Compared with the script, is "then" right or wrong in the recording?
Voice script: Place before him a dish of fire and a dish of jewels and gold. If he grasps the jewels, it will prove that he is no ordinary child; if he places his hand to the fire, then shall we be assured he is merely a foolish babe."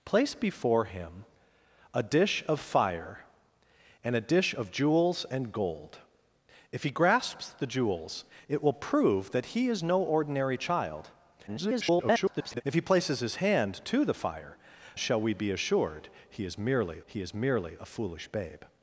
wrong